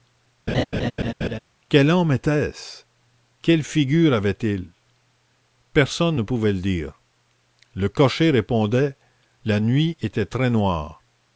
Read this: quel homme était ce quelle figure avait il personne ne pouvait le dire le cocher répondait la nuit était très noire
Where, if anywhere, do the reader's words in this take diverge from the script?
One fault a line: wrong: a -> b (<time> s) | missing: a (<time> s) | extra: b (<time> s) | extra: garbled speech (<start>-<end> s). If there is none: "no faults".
no faults